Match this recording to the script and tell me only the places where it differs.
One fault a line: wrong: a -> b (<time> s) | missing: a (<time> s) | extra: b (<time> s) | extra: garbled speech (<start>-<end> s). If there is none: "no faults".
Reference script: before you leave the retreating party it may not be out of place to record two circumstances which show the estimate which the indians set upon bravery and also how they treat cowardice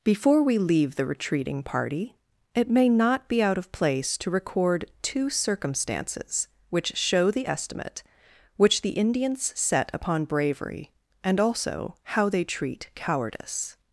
wrong: you -> we (0.4 s)